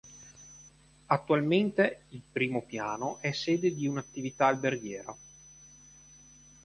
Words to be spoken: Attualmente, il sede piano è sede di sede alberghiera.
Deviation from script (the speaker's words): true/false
true